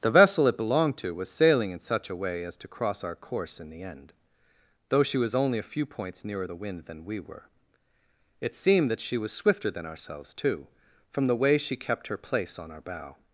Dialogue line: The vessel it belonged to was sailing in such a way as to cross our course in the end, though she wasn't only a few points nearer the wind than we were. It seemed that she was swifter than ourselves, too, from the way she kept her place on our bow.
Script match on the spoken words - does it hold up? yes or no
no